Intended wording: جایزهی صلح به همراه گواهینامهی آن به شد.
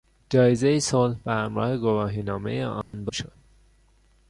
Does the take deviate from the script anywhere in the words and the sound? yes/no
yes